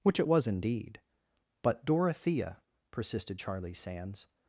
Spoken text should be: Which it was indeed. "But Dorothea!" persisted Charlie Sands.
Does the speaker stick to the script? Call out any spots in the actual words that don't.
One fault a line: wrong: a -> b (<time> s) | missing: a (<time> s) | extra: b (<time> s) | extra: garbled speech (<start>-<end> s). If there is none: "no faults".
no faults